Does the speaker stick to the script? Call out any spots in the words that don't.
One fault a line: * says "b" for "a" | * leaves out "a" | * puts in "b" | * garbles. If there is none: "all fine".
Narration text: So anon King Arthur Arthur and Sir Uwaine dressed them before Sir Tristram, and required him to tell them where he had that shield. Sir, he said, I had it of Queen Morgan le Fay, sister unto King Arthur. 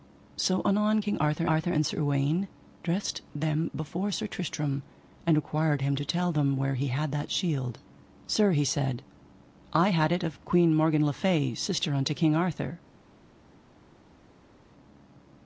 all fine